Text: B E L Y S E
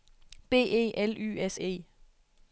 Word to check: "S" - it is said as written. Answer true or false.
true